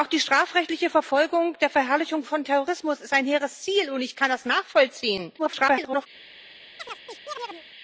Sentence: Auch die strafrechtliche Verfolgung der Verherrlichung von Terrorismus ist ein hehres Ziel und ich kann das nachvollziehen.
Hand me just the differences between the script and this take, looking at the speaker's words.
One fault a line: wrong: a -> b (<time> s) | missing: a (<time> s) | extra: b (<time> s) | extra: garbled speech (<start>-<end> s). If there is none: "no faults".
extra: garbled speech (5.4-6.1 s)